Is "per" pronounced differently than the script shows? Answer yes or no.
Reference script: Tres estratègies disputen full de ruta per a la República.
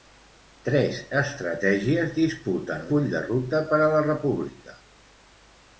no